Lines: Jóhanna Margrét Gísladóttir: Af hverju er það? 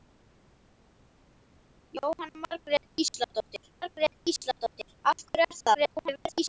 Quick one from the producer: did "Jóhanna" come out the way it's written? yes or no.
yes